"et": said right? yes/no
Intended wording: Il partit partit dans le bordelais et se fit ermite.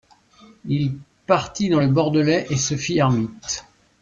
yes